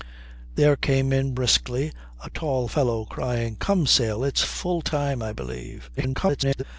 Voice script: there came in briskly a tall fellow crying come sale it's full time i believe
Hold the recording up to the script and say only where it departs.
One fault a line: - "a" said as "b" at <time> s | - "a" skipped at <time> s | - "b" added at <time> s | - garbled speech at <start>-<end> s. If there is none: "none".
- garbled speech at 6.0-6.6 s